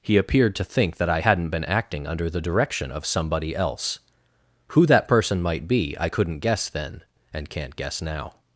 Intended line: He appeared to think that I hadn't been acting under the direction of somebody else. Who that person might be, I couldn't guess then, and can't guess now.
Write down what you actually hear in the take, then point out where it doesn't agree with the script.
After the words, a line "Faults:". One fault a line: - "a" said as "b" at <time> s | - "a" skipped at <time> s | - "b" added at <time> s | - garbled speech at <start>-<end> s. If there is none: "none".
He appeared to think that I hadn't been acting under the direction of somebody else. Who that person might be, I couldn't guess then, and can't guess now.
Faults:
none